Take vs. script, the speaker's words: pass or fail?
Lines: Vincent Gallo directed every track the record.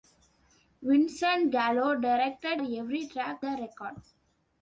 pass